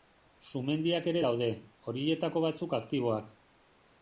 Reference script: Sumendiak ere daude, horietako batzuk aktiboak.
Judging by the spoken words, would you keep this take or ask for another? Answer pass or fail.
pass